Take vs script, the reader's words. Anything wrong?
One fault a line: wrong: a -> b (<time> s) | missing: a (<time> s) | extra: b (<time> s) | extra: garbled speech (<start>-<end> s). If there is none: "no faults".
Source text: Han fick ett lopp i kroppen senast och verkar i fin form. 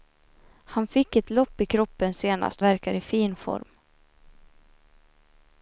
missing: och (2.6 s)